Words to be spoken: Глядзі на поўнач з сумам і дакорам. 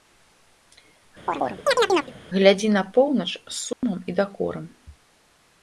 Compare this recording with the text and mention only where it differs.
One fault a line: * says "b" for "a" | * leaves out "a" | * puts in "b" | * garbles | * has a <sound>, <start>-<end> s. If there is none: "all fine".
* has a chirp, 1.3-2.1 s
* has a dropout, 3.7-3.8 s